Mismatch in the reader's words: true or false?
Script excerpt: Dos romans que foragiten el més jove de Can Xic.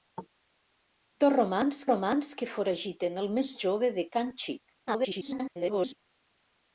true